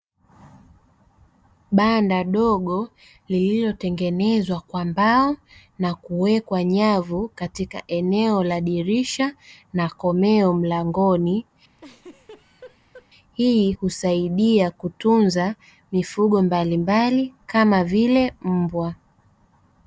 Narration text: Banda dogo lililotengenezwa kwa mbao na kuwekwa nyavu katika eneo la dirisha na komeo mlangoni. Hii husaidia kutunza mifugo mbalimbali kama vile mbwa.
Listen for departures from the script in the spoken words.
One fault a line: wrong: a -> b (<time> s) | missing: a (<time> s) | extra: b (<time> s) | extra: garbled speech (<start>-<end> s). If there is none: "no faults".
no faults